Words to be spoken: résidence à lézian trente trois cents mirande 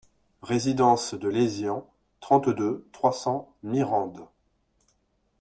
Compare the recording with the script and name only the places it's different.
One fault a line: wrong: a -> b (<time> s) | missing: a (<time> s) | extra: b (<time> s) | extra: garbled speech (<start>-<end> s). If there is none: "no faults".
wrong: à -> de (1.1 s)
extra: deux (2.5 s)